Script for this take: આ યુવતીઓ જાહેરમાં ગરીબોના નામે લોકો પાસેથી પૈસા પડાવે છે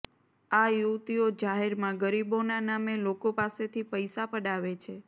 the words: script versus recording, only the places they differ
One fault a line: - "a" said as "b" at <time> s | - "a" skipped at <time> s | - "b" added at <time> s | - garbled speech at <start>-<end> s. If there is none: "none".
none